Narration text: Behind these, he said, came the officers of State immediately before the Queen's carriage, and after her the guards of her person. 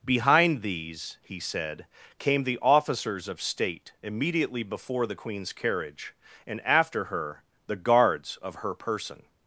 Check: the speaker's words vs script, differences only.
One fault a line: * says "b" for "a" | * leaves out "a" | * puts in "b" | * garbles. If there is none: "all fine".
all fine